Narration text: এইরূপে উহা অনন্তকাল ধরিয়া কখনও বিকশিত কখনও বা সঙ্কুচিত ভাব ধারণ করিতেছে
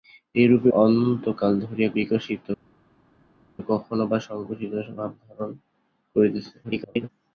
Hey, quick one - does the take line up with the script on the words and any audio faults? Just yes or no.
no